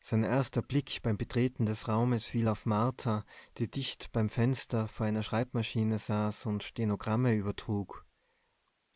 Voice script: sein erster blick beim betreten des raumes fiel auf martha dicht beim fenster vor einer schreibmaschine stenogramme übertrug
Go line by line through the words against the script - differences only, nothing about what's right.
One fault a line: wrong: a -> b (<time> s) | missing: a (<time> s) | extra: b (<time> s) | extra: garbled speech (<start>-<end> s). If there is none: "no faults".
extra: die (3.6 s)
extra: saß und (6.0 s)